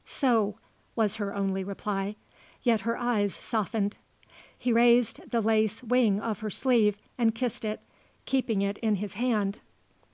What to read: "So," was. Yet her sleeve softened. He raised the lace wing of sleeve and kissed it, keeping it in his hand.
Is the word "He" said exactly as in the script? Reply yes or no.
yes